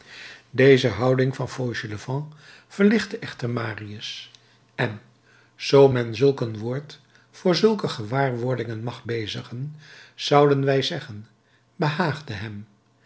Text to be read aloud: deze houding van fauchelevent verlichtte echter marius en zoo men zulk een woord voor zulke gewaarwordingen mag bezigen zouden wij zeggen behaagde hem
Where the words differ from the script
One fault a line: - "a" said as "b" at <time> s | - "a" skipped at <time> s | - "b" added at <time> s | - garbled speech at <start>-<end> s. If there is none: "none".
none